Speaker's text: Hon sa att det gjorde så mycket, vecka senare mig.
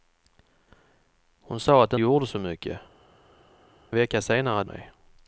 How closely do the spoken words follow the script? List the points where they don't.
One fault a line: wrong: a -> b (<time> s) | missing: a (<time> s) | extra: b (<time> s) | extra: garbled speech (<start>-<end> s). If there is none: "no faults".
no faults